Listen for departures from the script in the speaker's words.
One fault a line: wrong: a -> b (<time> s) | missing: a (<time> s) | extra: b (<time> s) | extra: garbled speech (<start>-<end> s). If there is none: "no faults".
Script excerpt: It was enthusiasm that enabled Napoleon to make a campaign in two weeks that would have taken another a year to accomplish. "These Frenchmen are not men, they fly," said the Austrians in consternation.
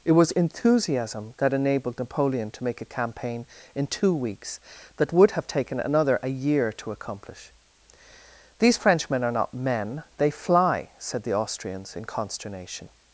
no faults